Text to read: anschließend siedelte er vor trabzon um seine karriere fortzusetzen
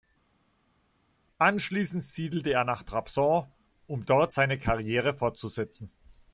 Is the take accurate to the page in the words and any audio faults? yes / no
no